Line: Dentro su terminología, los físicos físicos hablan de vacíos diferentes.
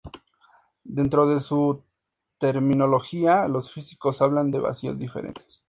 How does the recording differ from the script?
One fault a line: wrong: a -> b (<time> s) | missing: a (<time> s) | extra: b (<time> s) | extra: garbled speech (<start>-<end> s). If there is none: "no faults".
extra: de (1.3 s)
missing: físicos (4.2 s)